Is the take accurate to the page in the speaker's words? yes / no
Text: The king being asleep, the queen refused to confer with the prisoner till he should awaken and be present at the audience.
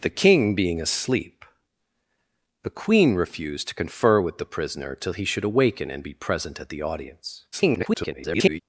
no